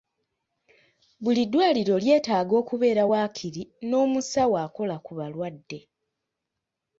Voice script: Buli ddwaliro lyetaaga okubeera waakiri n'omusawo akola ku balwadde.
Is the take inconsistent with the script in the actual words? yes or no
no